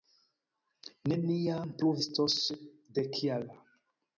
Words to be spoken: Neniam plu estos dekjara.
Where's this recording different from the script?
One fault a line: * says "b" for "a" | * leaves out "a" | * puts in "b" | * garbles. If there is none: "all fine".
all fine